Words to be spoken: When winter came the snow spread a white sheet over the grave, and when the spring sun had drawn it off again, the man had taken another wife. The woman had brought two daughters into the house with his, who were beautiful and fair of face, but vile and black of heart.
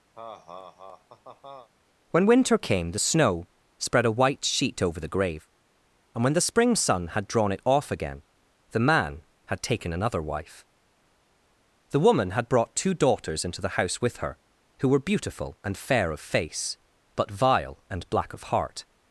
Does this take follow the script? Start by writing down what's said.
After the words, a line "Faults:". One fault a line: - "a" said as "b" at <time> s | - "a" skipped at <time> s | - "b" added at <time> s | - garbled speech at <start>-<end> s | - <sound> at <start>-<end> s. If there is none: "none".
When winter came the snow spread a white sheet over the grave, and when the spring sun had drawn it off again, the man had taken another wife. The woman had brought two daughters into the house with her, who were beautiful and fair of face, but vile and black of heart.
Faults:
- laugh at 0.1-1.7 s
- "his" said as "her" at 14.2 s